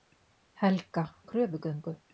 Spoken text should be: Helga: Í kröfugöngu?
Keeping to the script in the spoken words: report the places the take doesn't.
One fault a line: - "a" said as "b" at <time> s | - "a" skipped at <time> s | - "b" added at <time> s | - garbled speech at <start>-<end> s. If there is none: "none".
none